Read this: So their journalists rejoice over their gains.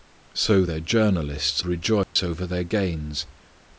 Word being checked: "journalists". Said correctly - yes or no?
yes